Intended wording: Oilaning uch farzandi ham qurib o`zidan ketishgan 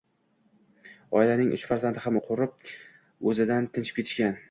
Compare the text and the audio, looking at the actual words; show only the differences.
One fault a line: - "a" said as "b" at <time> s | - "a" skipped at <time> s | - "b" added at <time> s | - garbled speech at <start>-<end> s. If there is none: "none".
none